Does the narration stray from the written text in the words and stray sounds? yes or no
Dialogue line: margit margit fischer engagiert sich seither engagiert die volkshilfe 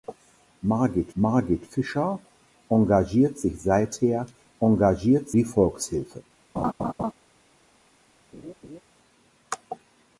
yes